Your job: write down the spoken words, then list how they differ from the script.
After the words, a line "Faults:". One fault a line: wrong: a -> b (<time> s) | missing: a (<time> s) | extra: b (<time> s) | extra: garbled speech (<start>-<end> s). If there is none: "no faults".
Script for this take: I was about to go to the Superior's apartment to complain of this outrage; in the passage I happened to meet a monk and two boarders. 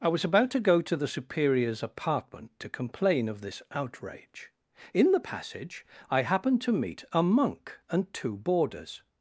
I was about to go to the Superior's apartment to complain of this outrage; in the passage I happened to meet a monk and two boarders.
Faults:
no faults